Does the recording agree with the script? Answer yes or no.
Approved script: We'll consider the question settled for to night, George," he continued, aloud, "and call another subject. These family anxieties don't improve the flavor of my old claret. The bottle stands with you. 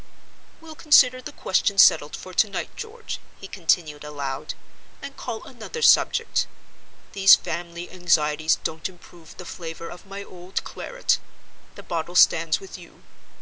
yes